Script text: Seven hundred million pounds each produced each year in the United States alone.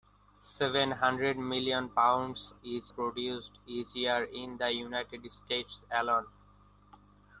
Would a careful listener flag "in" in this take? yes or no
no